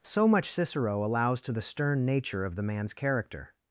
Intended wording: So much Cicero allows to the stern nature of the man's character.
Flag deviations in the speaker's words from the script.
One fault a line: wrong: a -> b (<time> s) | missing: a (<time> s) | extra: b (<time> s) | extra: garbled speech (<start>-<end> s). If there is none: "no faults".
no faults